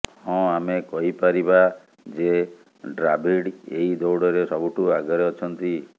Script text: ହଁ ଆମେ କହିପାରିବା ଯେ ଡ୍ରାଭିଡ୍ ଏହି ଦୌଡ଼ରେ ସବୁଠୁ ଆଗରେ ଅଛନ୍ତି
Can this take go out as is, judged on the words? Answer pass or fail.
pass